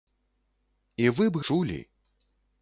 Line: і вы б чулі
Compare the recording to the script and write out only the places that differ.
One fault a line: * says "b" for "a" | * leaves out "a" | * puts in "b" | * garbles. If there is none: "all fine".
all fine